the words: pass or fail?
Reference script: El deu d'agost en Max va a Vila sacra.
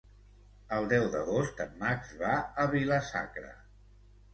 pass